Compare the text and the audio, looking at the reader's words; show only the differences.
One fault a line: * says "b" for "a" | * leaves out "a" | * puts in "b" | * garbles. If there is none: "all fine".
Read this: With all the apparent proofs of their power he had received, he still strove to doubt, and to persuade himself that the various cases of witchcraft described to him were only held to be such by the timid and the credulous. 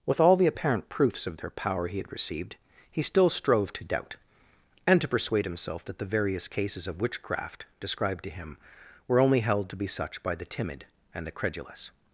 all fine